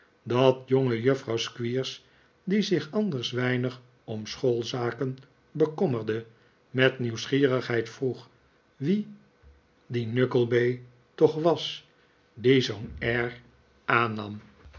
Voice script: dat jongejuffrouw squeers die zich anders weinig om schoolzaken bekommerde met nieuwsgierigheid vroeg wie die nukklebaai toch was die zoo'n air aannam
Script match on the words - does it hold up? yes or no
yes